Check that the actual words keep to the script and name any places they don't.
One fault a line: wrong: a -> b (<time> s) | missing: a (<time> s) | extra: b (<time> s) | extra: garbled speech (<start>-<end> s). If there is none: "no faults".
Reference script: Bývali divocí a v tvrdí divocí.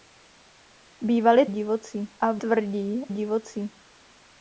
no faults